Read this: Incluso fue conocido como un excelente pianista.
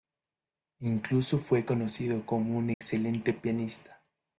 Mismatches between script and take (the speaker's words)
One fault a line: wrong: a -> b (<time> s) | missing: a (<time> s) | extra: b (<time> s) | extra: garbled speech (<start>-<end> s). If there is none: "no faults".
no faults